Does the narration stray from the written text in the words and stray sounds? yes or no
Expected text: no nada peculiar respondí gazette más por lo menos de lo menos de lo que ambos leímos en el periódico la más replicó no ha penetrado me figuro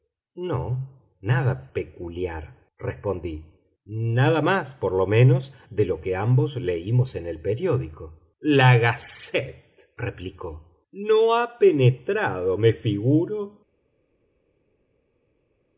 yes